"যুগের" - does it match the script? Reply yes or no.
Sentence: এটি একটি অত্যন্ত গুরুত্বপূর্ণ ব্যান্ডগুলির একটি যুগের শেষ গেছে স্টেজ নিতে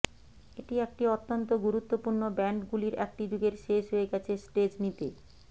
yes